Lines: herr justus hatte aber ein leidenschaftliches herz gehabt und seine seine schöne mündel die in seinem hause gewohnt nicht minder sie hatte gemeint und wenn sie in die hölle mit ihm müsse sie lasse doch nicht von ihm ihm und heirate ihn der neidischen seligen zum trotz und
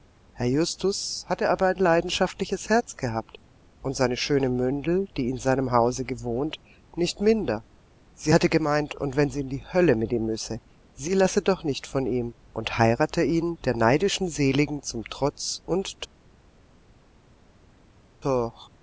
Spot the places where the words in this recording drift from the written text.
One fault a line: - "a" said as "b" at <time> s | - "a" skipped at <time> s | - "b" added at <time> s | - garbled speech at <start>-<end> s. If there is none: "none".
- "seine" skipped at 4.2 s
- "ihm" skipped at 12.3 s